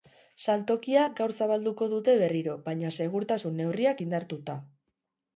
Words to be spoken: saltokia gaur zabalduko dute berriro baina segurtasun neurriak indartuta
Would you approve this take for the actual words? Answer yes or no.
yes